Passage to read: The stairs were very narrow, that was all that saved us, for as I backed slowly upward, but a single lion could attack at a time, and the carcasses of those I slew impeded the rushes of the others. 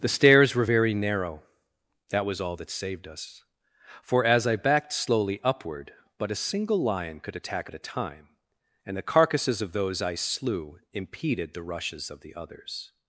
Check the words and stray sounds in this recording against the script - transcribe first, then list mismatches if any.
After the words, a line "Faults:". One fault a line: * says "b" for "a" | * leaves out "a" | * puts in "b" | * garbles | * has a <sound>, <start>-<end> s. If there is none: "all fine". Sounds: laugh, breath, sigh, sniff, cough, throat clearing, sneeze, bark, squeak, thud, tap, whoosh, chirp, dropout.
The stairs were very narrow, that was all that saved us, for as I backed slowly upward, but a single lion could attack at a time, and the carcasses of those I slew impeded the rushes of the others.
Faults:
all fine